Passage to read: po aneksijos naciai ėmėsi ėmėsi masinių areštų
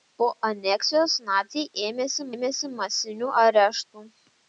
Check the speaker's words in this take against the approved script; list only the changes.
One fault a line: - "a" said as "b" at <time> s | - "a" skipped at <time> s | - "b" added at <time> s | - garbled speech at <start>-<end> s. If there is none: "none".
none